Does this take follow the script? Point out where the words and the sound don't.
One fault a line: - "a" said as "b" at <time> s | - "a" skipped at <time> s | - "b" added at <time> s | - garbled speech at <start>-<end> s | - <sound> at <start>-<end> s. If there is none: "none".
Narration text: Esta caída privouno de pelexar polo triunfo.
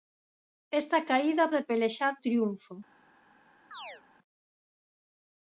- "privouno" skipped at 1.5 s
- "polo" skipped at 2.1 s
- chirp at 3.7-4.0 s